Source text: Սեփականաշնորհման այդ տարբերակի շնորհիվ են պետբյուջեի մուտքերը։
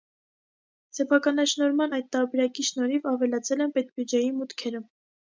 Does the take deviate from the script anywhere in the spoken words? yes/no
yes